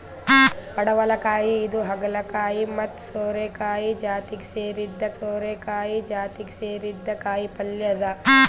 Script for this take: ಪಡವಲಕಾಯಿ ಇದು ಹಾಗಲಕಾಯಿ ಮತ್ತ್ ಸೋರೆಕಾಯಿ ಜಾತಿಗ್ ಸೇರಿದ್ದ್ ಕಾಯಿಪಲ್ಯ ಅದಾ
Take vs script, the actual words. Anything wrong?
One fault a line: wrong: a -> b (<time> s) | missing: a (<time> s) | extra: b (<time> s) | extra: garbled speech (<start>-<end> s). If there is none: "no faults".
extra: ಸೋರೆಕಾಯಿ ಜಾತಿಗ್ ಸೇರಿದ್ದ್ (5.1 s)